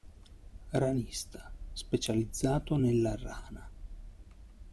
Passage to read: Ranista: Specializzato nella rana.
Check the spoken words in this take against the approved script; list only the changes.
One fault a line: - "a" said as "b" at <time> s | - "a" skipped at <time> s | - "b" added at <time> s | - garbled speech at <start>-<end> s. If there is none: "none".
none